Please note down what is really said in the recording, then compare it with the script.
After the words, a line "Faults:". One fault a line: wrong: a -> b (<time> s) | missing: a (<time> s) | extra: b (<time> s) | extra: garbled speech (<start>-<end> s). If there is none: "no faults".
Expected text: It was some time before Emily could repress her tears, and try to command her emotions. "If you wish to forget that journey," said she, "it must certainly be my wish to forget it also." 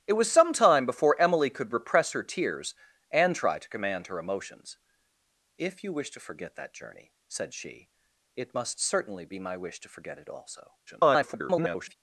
It was some time before Emily could repress her tears, and try to command her emotions. "If you wish to forget that journey," said she, "it must certainly be my wish to forget it also." [garbled]
Faults:
extra: garbled speech (10.9-12.0 s)